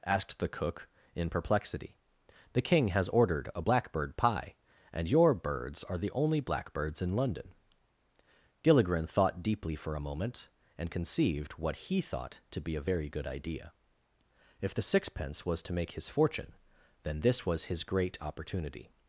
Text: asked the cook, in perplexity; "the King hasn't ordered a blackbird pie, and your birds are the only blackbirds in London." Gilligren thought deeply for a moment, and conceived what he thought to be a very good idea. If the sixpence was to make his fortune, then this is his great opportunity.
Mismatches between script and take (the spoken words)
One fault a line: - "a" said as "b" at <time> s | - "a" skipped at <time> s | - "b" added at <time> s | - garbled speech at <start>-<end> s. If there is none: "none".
- "hasn't" said as "has" at 2.9 s
- "is" said as "was" at 17.4 s